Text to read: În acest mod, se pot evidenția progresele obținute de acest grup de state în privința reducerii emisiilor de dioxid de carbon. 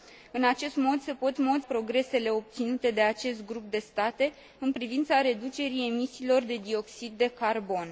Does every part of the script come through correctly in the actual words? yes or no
no